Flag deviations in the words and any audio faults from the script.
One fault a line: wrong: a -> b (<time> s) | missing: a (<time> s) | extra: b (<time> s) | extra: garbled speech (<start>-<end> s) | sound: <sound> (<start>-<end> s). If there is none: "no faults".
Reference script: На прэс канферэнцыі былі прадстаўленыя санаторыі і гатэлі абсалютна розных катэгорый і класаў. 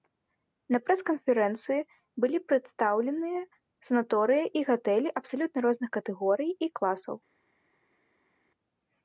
no faults